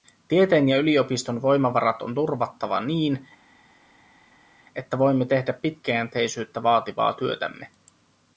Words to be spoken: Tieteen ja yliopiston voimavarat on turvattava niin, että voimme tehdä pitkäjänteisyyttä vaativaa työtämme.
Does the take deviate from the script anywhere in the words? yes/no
no